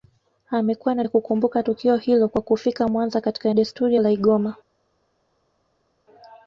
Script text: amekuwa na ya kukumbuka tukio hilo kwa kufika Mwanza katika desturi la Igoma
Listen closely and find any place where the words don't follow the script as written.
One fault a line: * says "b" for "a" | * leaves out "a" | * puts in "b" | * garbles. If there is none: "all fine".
all fine